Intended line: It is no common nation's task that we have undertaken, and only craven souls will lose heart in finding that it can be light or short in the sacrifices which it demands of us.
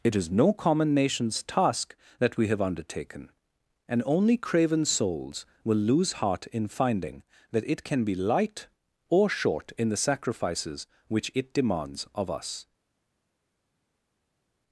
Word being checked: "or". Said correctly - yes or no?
yes